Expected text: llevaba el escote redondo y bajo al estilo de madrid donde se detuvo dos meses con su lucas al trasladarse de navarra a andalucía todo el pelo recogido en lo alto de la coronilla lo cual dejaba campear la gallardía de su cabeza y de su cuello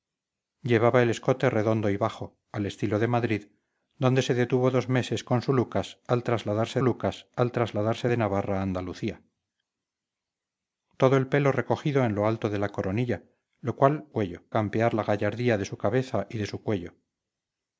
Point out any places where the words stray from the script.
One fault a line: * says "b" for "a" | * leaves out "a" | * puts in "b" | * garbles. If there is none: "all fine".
* puts in "lucas al trasladarse"
* says "cuello" for "dejaba"